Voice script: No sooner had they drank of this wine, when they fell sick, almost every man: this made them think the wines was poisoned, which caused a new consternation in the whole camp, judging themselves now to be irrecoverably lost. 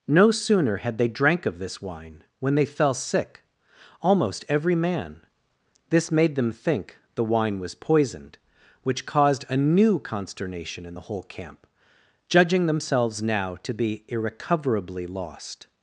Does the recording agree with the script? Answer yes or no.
no